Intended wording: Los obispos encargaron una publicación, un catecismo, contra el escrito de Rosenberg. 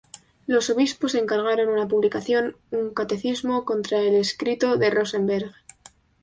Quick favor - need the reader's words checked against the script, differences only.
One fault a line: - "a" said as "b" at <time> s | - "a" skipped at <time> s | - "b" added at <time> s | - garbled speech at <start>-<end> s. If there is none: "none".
none